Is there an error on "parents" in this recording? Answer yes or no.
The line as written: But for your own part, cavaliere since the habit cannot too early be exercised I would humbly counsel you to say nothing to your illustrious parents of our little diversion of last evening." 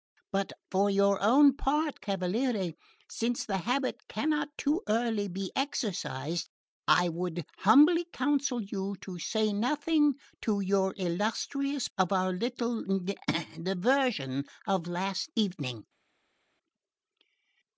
yes